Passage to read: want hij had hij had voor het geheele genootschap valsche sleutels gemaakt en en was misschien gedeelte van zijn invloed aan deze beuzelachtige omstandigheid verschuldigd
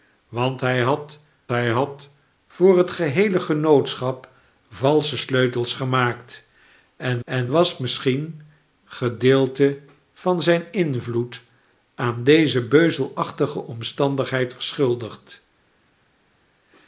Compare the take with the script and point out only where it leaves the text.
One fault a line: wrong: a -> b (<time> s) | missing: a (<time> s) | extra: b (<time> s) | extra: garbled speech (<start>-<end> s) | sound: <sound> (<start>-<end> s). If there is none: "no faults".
no faults